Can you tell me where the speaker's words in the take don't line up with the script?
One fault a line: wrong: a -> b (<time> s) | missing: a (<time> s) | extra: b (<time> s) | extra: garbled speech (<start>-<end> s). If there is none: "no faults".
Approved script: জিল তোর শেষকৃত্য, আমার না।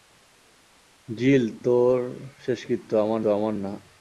extra: আমার (3.3 s)